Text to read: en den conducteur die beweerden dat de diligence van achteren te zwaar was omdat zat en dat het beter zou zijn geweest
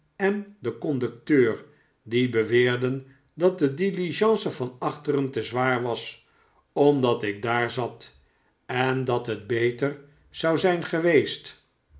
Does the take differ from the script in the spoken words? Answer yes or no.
yes